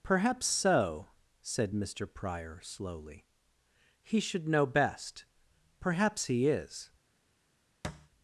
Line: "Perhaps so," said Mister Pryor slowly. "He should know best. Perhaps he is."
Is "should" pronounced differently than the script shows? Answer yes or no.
no